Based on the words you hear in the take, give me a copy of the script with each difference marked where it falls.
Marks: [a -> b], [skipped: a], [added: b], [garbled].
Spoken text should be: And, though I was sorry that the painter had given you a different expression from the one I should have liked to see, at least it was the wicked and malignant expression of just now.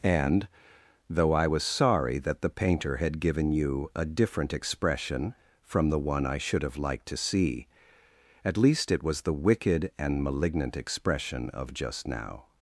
And, though I was sorry that the painter had given you a different expression from the one I should have liked to see, at least it was the wicked and malignant expression of just now.